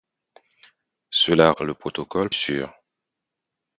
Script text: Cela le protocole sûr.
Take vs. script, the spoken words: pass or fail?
pass